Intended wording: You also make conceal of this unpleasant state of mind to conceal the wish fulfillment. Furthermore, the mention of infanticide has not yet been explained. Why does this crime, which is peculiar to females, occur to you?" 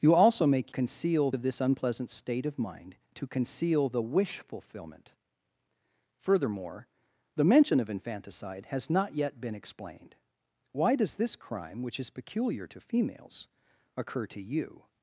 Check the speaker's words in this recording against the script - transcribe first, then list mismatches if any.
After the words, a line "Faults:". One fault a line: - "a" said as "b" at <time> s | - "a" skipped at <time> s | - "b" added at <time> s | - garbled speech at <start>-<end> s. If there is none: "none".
You also make conceal of this unpleasant state of mind to conceal the wish fulfillment. Furthermore, the mention of infanticide has not yet been explained. Why does this crime, which is peculiar to females, occur to you?"
Faults:
none